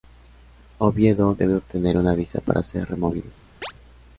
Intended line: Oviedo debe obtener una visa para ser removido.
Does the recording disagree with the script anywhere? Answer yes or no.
no